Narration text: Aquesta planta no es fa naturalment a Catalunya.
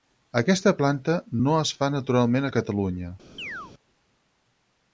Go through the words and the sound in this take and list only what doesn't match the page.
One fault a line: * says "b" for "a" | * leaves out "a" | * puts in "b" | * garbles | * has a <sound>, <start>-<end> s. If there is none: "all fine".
* has a chirp, 3.4-3.7 s